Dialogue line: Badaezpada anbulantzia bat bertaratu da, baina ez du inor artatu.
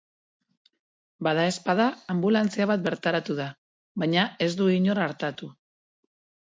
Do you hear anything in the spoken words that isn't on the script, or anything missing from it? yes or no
no